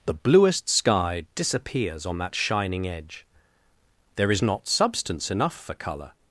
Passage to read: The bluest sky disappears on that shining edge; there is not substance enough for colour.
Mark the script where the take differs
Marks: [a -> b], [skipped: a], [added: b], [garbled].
The bluest sky disappears on that shining edge; there is not substance enough for colour.